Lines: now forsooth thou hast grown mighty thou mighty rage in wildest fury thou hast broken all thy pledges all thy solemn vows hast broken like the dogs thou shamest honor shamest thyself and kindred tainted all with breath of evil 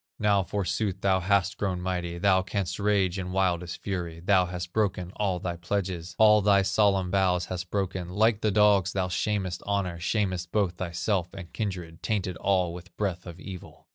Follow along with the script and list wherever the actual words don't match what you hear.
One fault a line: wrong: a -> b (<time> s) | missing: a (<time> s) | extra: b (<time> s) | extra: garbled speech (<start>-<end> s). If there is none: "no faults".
wrong: mighty -> canst (2.4 s)
extra: both (10.5 s)